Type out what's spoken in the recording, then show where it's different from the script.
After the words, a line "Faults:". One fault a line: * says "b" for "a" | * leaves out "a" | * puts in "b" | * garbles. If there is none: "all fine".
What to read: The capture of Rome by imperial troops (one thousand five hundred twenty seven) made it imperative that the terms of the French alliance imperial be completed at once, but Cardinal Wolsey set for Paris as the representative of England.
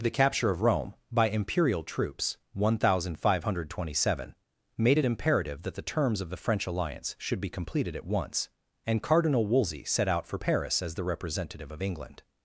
The capture of Rome by imperial troops (one thousand five hundred twenty seven) made it imperative that the terms of the French alliance should be completed at once, and Cardinal Wolsey set out for Paris as the representative of England.
Faults:
* says "should" for "imperial"
* says "and" for "but"
* puts in "out"